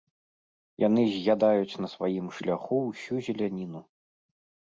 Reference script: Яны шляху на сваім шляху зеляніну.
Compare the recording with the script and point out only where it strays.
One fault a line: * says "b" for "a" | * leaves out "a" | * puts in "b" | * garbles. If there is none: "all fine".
* says "з'ядаюць" for "шляху"
* puts in "ўсю"